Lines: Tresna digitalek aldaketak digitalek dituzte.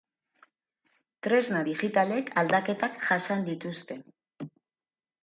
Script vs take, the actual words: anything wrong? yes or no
yes